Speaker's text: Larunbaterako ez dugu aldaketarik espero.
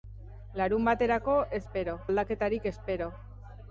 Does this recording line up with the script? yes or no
no